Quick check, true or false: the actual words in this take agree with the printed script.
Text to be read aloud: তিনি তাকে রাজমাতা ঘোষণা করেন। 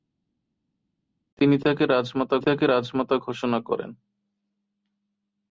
false